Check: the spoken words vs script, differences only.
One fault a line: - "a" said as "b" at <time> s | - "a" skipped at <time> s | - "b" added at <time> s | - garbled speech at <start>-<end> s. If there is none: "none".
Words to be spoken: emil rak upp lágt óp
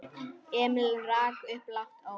none